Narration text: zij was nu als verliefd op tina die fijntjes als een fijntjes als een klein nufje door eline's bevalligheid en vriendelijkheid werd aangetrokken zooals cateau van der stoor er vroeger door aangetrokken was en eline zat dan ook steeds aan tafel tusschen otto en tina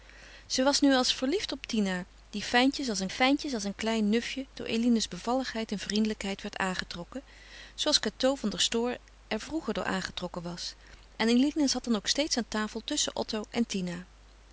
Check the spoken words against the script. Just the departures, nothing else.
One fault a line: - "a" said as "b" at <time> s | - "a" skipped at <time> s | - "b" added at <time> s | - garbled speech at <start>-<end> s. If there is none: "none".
none